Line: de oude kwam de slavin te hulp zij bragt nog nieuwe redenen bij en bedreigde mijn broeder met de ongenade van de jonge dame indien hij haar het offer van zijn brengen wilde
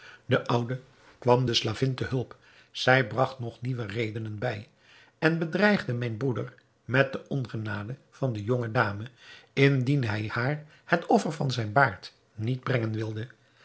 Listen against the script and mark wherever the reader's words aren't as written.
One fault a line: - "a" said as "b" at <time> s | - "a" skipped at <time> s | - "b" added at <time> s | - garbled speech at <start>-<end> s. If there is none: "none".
- "baard niet" added at 11.7 s